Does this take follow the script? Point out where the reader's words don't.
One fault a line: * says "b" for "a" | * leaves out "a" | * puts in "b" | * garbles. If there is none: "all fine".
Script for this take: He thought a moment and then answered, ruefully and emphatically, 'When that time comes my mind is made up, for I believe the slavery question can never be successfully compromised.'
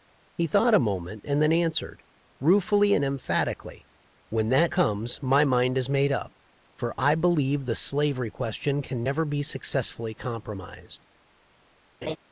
* leaves out "time"